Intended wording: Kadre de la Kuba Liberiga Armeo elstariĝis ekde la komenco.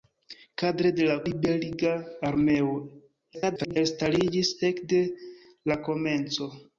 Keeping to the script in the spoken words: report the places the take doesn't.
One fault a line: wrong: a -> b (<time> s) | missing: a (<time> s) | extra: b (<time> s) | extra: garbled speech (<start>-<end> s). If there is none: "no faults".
missing: Kuba (1.2 s)
extra: garbled speech (3.3-3.8 s)